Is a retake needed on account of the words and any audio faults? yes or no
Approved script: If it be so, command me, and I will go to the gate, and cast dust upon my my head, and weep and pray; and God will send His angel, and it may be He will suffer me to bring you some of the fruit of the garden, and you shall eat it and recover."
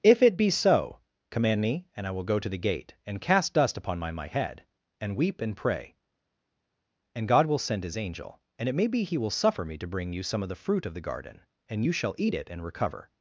no